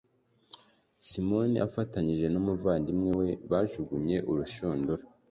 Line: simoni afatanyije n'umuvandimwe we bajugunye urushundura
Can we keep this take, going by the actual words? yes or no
yes